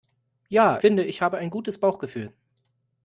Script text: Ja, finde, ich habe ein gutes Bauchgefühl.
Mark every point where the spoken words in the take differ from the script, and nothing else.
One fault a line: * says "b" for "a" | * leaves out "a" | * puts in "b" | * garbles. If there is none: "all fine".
all fine